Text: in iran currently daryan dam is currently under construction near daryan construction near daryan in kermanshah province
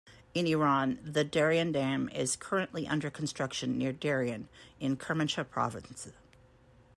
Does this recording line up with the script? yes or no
no